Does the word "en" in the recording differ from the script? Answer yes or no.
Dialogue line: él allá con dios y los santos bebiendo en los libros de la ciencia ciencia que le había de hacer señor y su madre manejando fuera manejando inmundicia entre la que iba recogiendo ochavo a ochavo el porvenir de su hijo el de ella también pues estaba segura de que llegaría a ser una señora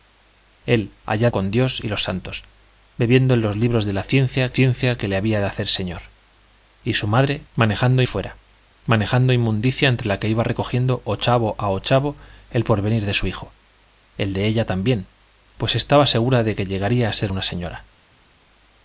no